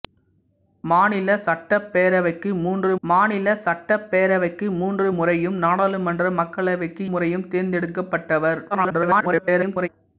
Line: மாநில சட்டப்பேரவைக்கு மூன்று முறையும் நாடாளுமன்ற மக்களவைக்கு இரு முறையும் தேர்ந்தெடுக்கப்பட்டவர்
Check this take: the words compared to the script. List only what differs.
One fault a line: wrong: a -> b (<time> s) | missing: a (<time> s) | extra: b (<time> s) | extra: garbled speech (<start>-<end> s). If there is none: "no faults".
extra: மாநில சட்டப்பேரவைக்கு மூன்று (3.0 s)
missing: இரு (7.1 s)
extra: garbled speech (8.7-9.9 s)